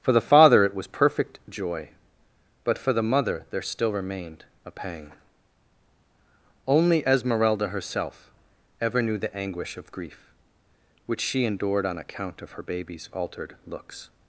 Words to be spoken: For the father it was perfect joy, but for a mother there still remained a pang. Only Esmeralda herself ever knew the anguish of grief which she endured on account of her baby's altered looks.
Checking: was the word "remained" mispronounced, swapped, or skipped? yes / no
no